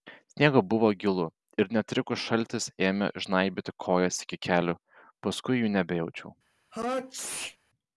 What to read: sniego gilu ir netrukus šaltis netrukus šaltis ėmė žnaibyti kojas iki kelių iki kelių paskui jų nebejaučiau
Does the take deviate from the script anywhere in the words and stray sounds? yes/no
yes